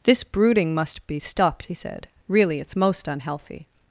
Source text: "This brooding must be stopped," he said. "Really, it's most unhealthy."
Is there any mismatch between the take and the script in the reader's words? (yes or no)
no